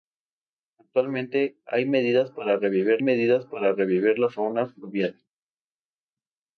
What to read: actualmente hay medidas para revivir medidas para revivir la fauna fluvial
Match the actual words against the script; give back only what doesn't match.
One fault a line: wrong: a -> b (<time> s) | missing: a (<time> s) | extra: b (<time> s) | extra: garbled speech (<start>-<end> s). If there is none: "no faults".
no faults